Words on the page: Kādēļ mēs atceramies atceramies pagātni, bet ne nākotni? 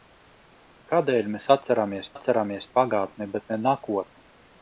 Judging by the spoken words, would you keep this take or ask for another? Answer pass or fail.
pass